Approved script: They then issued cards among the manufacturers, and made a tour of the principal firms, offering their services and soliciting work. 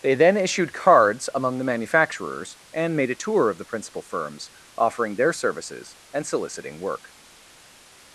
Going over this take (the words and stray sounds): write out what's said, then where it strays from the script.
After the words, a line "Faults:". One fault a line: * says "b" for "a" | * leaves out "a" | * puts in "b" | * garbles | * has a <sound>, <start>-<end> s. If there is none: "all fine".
They then issued cards among the manufacturers, and made a tour of the principal firms, offering their services and soliciting work.
Faults:
all fine